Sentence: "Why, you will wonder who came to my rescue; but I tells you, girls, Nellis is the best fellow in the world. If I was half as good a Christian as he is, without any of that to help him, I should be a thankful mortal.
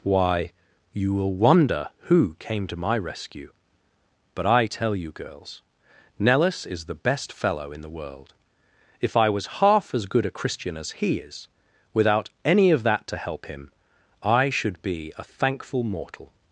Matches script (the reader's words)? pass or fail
fail